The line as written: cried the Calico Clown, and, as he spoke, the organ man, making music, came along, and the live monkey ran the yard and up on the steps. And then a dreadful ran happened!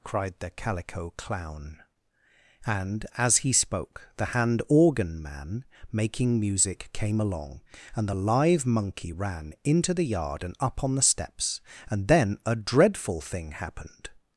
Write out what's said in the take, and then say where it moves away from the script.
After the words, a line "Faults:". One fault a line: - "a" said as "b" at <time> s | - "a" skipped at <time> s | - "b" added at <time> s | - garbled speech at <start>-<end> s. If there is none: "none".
cried the Calico Clown, and, as he spoke, the hand organ man, making music, came along, and the live monkey ran into the yard and up on the steps. And then a dreadful thing happened!
Faults:
- "hand" added at 4.2 s
- "into" added at 9.6 s
- "ran" said as "thing" at 13.2 s